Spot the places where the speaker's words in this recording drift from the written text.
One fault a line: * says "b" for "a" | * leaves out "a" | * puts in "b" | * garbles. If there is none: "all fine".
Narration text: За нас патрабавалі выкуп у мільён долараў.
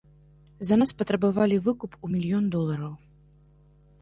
all fine